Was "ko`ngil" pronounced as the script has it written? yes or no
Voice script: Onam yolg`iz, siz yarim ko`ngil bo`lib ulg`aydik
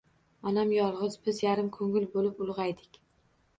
yes